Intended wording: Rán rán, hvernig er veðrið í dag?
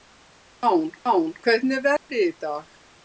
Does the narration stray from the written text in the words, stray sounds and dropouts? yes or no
yes